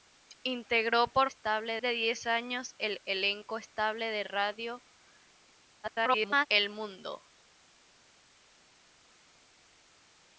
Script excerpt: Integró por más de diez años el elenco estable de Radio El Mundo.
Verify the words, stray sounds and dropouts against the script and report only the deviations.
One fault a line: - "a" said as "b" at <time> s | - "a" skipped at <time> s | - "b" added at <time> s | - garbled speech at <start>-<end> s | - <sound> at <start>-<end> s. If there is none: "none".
- "más" said as "estable" at 1.2 s
- garbled speech at 5.8-6.5 s